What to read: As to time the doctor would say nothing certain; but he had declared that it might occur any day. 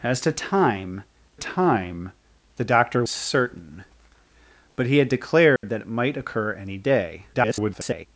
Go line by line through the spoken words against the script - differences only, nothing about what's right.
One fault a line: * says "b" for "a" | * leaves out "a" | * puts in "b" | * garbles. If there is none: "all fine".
* puts in "time"
* leaves out "would say nothing"
* garbles